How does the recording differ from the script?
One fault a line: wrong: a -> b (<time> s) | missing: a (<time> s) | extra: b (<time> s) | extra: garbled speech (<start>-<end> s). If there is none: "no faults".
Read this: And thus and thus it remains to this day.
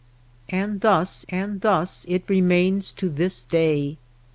no faults